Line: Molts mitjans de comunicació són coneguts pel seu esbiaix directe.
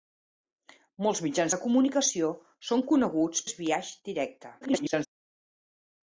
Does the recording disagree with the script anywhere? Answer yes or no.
yes